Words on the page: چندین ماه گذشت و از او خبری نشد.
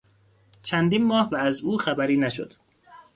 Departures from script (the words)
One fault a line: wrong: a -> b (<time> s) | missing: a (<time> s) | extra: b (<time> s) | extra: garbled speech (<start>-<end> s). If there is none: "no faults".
missing: گذشت (1.3 s)